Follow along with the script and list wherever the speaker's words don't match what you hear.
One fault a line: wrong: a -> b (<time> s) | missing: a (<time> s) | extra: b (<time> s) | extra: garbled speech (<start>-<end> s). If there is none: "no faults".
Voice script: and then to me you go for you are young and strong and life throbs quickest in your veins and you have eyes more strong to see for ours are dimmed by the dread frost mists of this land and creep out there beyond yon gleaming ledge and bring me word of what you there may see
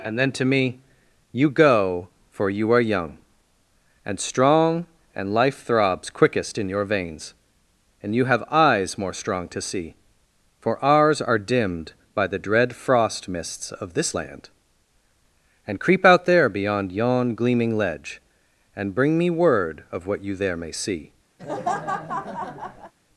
no faults